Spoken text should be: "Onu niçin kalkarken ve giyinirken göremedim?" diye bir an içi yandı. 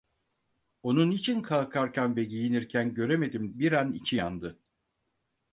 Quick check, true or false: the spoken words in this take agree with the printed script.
false